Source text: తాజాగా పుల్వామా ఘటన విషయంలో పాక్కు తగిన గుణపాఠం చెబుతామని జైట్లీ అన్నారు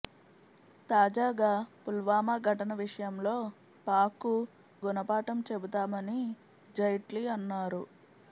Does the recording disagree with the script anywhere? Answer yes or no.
yes